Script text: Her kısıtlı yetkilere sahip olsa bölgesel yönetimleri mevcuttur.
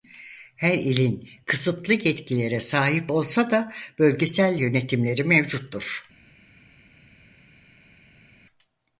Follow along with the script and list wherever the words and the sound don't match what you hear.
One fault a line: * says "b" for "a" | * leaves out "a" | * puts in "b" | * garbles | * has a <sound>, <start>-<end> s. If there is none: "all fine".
* puts in "ilin"
* puts in "da"